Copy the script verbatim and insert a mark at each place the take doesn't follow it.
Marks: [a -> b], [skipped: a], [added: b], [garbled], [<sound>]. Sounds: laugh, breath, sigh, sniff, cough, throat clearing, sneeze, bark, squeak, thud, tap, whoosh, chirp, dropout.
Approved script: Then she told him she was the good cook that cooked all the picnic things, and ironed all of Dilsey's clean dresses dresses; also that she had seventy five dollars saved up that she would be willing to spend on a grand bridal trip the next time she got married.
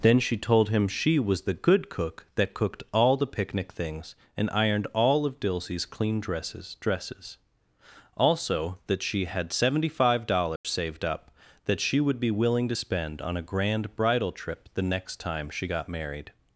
Then she told him she was the good cook that cooked all the picnic things, and ironed all of Dilsey's clean dresses dresses; also that she had seventy five dollars [dropout] saved up that she would be willing to spend on a grand bridal trip the next time she got married.